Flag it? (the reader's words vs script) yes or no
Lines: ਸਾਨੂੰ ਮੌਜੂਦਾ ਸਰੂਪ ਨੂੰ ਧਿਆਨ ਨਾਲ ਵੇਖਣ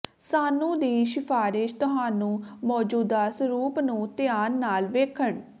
yes